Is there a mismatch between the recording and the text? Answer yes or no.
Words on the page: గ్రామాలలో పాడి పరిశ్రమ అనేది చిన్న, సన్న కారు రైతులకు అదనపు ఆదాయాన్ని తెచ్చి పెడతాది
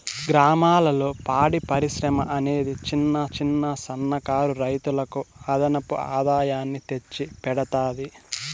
yes